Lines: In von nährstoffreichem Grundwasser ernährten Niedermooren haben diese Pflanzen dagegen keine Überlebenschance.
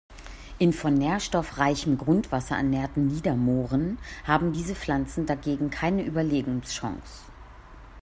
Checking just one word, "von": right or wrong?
right